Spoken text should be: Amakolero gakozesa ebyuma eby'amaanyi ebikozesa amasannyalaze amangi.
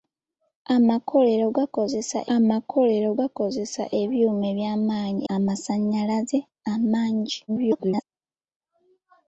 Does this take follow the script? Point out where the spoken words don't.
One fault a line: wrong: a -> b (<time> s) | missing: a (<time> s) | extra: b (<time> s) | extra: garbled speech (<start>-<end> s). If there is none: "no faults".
extra: amakolero gakozesa (2.4 s)
missing: ebikozesa (5.2 s)
extra: garbled speech (7.5-8.0 s)